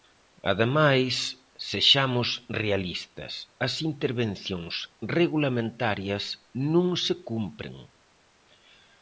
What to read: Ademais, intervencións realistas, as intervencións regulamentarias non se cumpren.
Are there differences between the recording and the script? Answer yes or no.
yes